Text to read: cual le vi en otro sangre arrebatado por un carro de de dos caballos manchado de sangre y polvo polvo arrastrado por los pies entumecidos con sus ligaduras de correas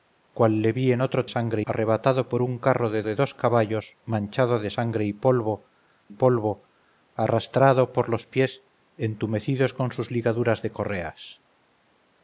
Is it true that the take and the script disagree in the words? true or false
false